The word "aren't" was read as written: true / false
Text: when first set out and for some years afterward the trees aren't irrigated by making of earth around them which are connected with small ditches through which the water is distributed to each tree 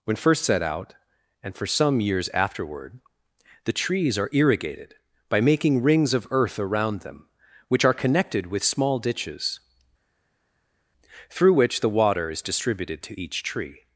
false